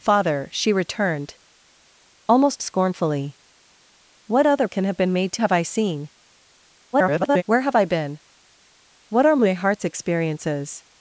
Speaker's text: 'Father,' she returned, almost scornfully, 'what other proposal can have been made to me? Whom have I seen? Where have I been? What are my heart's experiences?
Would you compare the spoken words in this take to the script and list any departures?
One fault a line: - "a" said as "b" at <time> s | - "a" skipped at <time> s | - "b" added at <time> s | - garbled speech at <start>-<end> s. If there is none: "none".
- "proposal" skipped at 4.7 s
- "me Whom" skipped at 5.4 s
- garbled speech at 6.9-7.4 s